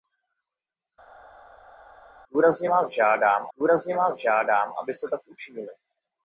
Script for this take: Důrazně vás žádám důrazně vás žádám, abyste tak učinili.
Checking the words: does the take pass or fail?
pass